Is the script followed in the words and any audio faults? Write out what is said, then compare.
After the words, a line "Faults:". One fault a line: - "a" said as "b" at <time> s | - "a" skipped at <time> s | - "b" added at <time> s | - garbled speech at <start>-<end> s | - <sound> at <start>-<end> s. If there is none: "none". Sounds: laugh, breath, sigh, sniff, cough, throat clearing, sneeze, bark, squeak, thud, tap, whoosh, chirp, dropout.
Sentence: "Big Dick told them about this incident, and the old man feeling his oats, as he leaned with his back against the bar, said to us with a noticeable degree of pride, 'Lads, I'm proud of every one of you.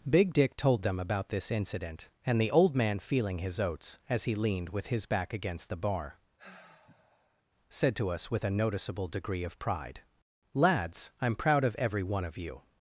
"Big Dick told them about this incident, and the old man feeling his oats, as he leaned with his back against the bar, said to us with a noticeable degree of pride, 'Lads, I'm proud of every one of you.
Faults:
- sigh at 6.4-7.4 s